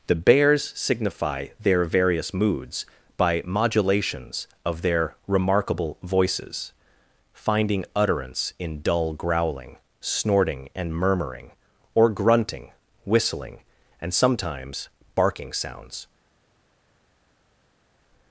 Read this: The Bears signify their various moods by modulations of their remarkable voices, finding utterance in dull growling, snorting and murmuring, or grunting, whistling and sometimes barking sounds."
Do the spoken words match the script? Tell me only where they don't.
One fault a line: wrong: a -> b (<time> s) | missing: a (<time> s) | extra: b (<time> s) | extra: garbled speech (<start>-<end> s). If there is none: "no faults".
no faults